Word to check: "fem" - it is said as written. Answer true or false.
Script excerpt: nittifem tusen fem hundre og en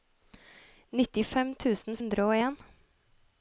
false